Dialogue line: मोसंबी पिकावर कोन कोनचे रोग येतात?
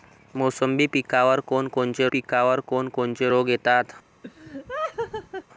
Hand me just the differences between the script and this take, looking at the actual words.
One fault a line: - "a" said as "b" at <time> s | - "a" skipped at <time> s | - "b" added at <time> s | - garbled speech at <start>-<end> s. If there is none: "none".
- "पिकावर कोन कोनचे" added at 2.1 s